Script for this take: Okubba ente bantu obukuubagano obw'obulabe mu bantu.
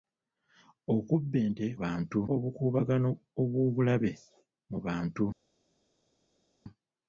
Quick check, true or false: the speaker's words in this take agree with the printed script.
true